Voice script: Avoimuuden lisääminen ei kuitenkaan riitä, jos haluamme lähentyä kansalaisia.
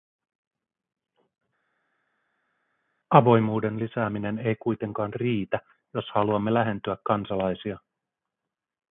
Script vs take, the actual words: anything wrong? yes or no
no